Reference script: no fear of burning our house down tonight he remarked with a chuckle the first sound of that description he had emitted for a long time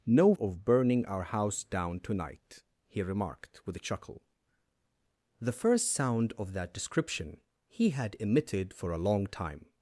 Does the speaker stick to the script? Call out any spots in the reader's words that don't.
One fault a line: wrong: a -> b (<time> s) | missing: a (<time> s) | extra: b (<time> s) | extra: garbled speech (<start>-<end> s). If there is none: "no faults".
missing: fear (0.3 s)